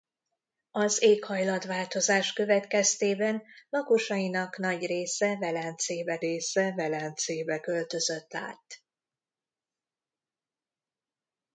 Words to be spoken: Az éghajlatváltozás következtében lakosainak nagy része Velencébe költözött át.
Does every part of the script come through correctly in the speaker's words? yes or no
no